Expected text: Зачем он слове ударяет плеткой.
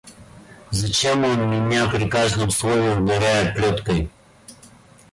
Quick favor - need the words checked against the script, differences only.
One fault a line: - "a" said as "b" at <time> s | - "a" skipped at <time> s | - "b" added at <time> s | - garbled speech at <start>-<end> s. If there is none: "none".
- "меня при каждом" added at 1.5 s